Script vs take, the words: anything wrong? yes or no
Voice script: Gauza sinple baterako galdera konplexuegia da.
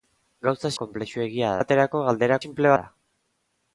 yes